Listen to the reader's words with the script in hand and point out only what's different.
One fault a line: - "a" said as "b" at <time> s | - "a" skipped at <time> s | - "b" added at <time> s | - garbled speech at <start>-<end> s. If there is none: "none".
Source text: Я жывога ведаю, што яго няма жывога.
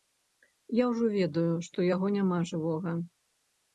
- "жывога" said as "ўжо" at 0.9 s